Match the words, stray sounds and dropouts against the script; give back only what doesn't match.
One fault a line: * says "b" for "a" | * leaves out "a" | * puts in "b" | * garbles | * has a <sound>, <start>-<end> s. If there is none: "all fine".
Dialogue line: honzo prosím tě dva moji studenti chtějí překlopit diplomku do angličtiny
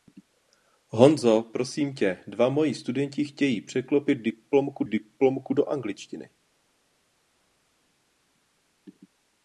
* puts in "diplomku"